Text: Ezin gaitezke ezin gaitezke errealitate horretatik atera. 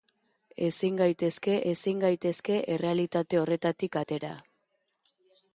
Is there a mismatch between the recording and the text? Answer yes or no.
no